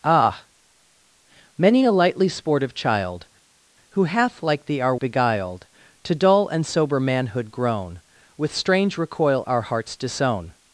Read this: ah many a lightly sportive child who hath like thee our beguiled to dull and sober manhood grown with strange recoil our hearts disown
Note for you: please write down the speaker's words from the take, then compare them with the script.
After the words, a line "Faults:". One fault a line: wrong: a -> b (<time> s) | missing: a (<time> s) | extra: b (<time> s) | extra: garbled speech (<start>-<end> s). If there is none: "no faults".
ah many a lightly sportive child who hath like thee our beguiled to dull and sober manhood grown with strange recoil our hearts disown
Faults:
no faults